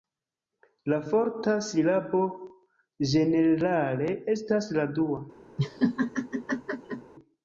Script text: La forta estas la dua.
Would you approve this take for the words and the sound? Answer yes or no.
no